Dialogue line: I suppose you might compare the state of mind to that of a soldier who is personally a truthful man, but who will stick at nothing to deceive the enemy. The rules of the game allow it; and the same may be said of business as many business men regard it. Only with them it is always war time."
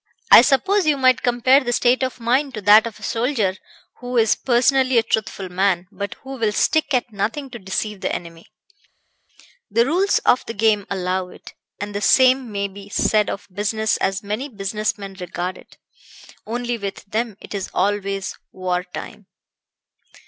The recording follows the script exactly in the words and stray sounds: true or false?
true